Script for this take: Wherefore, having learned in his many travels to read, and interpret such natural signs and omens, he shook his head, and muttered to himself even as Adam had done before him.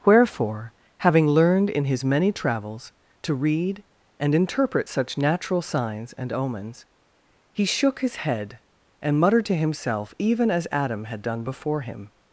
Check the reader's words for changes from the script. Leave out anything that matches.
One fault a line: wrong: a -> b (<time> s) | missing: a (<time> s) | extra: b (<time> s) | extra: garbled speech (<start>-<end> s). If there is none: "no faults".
no faults